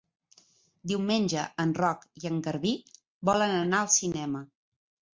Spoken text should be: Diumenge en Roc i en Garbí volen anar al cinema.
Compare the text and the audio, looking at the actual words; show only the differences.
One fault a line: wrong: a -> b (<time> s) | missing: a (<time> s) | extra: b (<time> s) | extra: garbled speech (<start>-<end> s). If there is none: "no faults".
no faults